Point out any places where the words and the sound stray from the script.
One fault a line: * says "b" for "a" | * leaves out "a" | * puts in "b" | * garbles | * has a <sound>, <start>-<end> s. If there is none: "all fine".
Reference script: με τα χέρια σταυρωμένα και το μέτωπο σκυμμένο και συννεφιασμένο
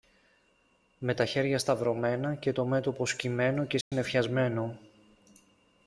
* has a dropout, 3.8-3.9 s